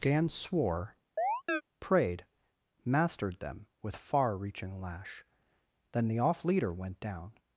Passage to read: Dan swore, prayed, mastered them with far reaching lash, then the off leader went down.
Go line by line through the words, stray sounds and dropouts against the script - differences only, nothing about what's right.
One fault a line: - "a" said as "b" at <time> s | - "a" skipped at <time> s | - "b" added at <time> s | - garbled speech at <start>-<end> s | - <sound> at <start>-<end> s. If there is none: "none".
- "Dan" said as "Gan" at 0.0 s
- chirp at 1.2-1.6 s